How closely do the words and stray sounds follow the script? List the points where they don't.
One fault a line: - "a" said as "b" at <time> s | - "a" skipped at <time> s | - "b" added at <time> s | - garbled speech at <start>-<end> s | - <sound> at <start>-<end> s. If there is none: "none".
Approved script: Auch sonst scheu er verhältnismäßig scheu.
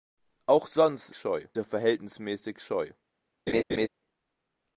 - laugh at 3.5-3.9 s